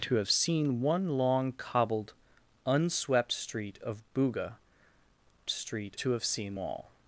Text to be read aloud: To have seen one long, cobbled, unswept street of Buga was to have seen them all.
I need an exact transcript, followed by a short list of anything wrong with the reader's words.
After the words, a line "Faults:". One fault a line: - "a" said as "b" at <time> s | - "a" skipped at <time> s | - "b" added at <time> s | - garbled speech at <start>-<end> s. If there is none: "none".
To have seen one long, cobbled, unswept street of Buga street to have seen all.
Faults:
- "was" said as "street" at 5.5 s
- "them" skipped at 6.6 s